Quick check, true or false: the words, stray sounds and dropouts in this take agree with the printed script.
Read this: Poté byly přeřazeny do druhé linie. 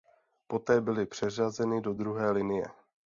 true